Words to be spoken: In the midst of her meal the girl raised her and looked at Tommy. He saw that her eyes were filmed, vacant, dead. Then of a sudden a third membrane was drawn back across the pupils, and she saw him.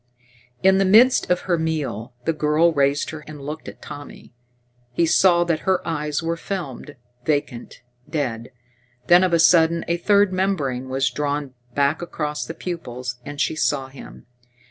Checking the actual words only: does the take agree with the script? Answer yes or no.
yes